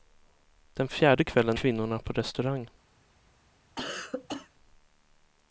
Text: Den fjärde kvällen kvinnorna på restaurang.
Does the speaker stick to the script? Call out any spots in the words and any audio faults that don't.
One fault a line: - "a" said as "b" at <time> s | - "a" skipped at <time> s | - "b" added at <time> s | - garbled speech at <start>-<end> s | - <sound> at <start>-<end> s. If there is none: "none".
- cough at 3.8-4.5 s